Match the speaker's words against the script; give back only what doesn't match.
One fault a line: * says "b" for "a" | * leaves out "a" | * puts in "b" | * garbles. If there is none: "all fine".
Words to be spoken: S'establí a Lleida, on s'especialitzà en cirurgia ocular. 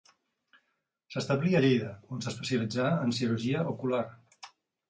all fine